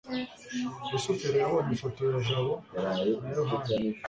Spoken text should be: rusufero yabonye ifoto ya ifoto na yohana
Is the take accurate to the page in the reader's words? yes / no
no